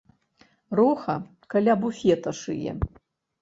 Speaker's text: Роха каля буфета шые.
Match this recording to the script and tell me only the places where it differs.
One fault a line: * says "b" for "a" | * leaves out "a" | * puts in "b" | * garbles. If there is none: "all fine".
all fine